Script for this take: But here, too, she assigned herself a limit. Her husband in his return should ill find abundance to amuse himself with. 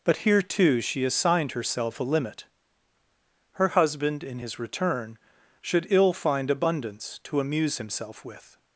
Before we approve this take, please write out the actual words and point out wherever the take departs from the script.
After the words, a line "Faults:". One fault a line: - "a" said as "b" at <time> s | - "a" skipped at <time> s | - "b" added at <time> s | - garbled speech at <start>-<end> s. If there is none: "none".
But here, too, she assigned herself a limit. Her husband in his return should ill find abundance to amuse himself with.
Faults:
none